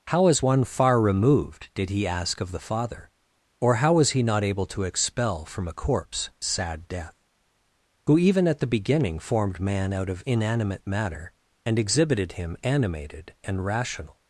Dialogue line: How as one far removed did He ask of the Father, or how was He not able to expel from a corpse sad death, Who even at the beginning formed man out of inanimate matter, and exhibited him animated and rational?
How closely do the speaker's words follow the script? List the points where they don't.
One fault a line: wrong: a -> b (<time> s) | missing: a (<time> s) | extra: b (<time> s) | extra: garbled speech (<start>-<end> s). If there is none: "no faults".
no faults